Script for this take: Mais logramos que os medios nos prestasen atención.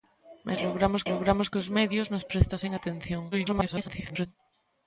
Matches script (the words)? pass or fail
fail